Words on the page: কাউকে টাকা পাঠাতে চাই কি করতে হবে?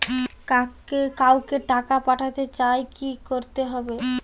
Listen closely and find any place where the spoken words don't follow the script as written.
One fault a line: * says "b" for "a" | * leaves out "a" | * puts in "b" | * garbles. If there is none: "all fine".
all fine